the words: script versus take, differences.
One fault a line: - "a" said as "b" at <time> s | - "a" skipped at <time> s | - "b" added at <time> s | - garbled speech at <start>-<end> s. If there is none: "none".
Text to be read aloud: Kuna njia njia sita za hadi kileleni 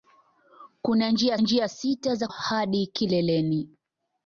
none